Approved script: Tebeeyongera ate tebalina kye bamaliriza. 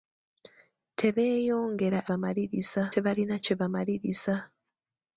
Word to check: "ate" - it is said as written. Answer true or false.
false